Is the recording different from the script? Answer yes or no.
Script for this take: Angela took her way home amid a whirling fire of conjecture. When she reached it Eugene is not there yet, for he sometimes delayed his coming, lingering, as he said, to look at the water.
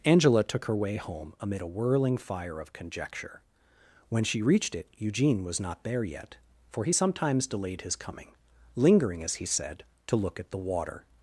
yes